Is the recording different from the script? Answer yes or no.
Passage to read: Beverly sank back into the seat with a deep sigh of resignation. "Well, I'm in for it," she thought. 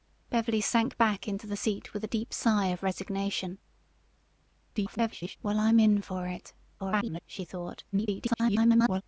yes